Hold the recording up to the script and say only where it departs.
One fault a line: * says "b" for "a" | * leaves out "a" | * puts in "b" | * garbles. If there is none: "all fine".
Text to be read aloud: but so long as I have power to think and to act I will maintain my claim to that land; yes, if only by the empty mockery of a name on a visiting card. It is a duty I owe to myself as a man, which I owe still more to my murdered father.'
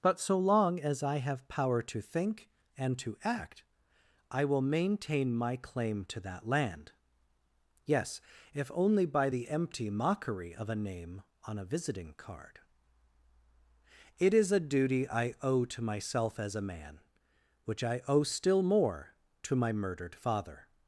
all fine